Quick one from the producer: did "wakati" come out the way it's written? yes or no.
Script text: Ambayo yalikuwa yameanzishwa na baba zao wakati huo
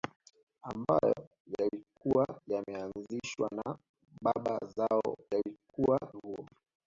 no